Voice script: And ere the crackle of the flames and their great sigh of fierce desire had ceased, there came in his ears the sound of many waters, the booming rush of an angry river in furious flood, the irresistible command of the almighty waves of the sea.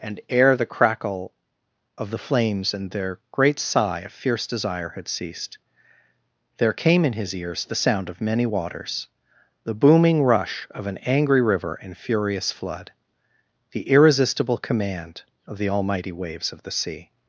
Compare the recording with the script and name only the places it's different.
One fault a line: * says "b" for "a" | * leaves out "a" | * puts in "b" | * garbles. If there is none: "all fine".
all fine